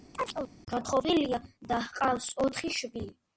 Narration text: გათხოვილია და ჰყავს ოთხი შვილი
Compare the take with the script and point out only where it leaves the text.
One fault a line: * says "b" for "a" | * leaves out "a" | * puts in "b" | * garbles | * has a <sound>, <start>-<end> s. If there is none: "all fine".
* has a chirp, 0.1-0.5 s